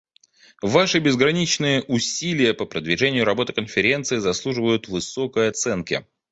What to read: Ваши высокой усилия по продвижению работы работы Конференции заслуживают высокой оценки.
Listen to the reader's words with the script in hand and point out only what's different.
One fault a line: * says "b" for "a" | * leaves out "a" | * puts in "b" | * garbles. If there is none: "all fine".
* says "безграничные" for "высокой"
* leaves out "работы"